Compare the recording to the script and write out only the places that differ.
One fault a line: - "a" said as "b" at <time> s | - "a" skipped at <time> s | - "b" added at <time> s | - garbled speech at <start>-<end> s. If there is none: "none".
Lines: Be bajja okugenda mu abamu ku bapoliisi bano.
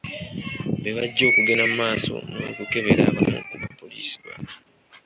- "maaso n'okukebera" added at 1.8 s